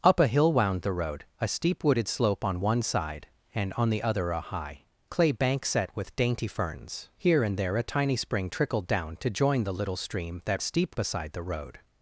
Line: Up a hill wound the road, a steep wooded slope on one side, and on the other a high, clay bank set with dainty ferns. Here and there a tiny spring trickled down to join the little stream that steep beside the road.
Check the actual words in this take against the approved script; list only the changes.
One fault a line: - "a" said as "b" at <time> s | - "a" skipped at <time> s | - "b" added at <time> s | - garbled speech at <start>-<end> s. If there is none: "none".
none